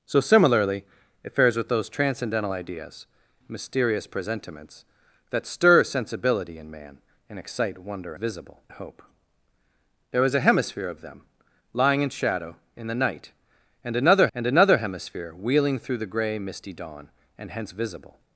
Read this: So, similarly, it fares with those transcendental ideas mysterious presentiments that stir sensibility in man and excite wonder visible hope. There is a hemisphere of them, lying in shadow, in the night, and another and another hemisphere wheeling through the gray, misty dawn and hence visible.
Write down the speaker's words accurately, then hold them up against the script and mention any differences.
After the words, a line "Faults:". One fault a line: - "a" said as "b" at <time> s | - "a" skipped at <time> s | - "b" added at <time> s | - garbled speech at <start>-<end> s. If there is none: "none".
So, similarly, it fares with those transcendental ideas mysterious presentiments that stir sensibility in man and excite wonder visible hope. There is a hemisphere of them, lying in shadow, in the night, and another and another hemisphere wheeling through the gray, misty dawn and hence visible.
Faults:
none